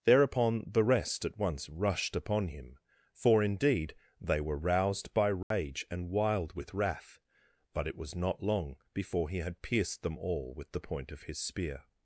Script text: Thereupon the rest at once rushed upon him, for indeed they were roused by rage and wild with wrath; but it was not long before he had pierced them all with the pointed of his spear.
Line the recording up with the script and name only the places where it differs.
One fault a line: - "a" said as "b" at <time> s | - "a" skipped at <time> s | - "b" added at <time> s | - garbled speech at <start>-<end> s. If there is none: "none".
- "pointed" said as "point" at 10.8 s